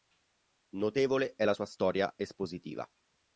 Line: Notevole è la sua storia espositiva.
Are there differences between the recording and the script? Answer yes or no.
no